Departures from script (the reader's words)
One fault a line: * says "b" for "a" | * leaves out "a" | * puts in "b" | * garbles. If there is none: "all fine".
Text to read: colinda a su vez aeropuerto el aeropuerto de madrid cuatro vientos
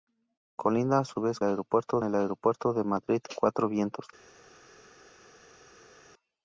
all fine